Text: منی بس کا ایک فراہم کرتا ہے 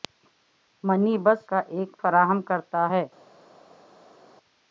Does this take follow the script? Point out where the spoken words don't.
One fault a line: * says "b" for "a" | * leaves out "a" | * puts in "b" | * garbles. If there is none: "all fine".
all fine